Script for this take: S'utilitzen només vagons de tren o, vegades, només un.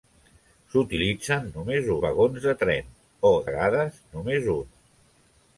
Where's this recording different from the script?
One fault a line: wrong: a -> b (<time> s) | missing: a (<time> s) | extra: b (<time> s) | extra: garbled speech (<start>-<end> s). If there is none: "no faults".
no faults